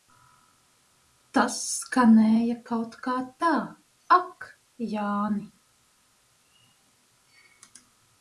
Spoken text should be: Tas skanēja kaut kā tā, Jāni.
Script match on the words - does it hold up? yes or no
no